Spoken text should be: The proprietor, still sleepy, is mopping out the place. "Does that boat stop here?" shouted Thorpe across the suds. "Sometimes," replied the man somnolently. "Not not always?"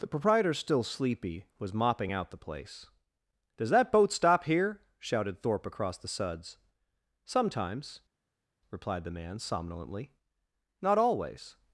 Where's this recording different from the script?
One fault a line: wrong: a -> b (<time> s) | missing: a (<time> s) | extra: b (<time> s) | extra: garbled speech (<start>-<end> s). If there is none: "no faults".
wrong: is -> was (1.6 s)
missing: not (11.0 s)